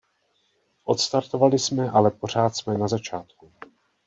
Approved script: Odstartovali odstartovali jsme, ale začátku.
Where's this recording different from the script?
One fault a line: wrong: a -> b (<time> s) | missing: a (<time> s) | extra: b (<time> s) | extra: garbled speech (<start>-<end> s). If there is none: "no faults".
wrong: odstartovali -> jsme ale pořád (1.6 s)
wrong: ale -> na (2.8 s)